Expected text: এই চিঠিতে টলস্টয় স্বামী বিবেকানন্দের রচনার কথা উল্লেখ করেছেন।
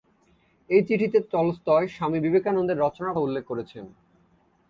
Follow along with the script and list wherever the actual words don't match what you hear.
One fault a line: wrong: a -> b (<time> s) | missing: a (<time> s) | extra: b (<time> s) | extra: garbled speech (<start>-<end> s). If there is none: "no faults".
missing: কথা (3.2 s)